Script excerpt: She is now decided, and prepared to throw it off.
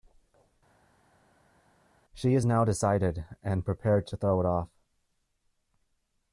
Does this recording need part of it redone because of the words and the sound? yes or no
no